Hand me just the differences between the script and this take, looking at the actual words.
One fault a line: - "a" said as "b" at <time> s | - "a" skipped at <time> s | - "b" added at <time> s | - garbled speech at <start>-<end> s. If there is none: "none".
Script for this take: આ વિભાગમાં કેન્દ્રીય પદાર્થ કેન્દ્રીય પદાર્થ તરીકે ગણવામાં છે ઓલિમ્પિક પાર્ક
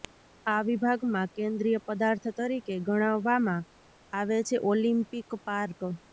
- "કેન્દ્રીય પદાર્થ" skipped at 2.3 s
- "આવે" added at 4.1 s